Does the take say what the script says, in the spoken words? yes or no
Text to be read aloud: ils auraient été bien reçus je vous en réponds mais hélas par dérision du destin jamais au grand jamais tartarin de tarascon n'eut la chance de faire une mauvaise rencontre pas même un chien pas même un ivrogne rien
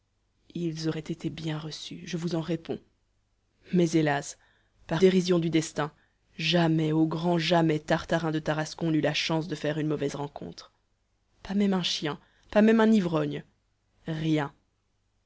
yes